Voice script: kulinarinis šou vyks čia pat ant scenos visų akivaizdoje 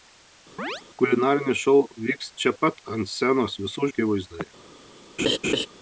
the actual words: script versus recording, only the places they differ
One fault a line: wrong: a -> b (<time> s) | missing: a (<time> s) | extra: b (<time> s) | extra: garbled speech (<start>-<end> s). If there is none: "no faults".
no faults